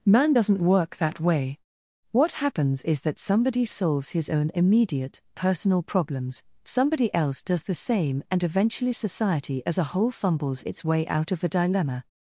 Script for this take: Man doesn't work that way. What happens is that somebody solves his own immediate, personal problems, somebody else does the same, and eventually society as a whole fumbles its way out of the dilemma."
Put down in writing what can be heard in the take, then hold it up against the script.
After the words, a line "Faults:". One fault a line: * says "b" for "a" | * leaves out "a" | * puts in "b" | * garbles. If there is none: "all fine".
Man doesn't work that way. What happens is that somebody solves his own immediate, personal problems, somebody else does the same, and eventually society as a whole fumbles its way out of the dilemma."
Faults:
all fine